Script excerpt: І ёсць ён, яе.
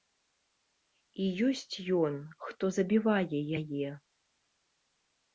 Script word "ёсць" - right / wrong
right